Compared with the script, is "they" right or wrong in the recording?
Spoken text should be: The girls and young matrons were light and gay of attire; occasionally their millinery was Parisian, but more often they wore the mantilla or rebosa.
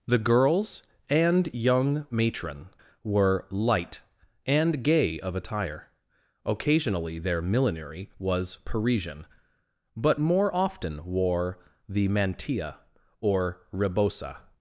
wrong